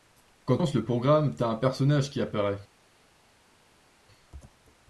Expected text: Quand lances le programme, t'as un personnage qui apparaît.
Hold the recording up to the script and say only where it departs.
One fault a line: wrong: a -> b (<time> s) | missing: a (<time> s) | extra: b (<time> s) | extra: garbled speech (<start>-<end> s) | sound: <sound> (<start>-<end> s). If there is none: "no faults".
no faults